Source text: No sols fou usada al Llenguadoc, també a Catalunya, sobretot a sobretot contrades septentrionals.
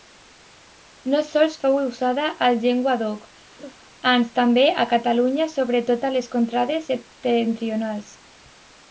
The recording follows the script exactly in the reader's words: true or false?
false